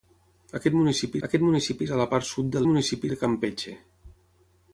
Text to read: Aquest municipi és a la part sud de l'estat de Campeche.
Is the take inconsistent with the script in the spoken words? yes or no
yes